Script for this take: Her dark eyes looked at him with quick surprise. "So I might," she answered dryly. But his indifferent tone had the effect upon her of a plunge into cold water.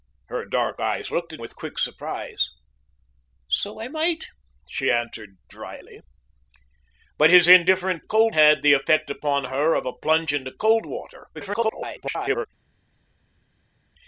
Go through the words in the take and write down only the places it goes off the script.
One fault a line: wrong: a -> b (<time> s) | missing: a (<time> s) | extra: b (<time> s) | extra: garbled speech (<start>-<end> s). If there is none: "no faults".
missing: him (1.4 s)
wrong: tone -> cold (8.0 s)
extra: garbled speech (11.3-12.5 s)